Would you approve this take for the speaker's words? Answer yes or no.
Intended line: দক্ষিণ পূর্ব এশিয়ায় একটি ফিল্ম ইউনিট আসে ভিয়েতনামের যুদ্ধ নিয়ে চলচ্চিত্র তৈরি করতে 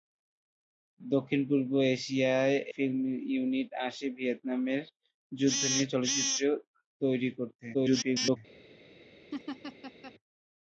no